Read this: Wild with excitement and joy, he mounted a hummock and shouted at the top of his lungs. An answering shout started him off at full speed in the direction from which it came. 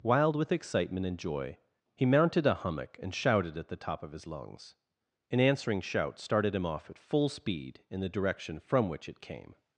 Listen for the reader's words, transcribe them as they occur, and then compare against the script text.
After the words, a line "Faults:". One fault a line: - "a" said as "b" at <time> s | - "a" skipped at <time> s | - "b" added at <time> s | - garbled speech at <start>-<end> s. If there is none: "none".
Wild with excitement and joy, he mounted a hummock and shouted at the top of his lungs. An answering shout started him off at full speed in the direction from which it came.
Faults:
none